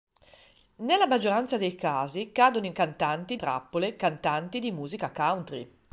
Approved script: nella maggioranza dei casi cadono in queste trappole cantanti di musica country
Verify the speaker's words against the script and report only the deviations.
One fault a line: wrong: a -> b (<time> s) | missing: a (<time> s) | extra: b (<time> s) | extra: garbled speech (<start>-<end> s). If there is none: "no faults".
wrong: queste -> cantanti (2.7 s)